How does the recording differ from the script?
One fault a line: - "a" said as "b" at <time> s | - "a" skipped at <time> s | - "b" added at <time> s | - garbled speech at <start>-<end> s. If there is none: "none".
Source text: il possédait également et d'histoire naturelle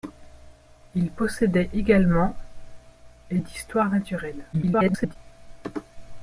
- garbled speech at 4.5-5.2 s